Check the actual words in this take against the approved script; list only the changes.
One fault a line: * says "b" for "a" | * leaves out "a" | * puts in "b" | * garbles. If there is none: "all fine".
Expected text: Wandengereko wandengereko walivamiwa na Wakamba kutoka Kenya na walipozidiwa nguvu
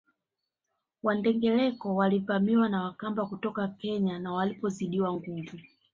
* leaves out "wandengereko"